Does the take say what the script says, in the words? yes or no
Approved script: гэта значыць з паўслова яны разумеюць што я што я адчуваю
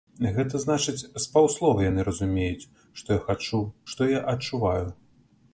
no